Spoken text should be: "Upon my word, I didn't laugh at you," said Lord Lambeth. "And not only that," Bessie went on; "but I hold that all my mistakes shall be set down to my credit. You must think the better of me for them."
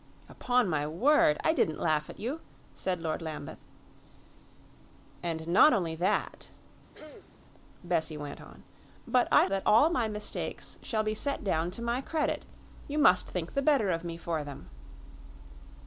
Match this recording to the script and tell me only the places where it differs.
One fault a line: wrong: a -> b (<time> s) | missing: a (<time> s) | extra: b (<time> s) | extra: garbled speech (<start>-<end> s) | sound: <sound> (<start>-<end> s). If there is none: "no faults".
sound: throat clearing (6.9-7.3 s)
missing: hold (9.5 s)